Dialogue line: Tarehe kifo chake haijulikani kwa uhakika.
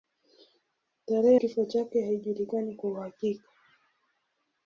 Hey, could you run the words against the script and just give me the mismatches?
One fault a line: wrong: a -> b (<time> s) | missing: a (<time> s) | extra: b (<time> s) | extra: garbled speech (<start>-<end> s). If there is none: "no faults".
no faults